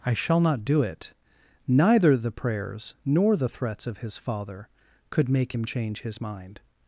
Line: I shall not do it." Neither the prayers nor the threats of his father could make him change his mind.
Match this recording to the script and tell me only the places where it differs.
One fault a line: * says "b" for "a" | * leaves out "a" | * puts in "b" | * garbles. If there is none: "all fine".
all fine